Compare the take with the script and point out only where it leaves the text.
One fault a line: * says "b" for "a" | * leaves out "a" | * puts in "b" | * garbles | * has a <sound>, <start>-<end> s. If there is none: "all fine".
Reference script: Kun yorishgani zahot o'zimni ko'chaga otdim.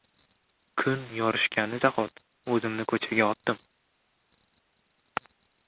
all fine